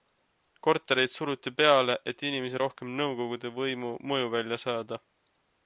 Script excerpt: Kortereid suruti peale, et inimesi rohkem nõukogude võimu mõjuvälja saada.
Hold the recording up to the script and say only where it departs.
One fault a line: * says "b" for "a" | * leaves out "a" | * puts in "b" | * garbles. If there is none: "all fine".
all fine